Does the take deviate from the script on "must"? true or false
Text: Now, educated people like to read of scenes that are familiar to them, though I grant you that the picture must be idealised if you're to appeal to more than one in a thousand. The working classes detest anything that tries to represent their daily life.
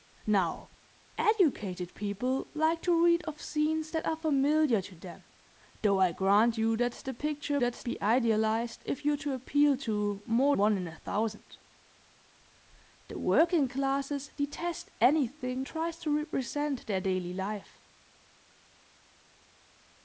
true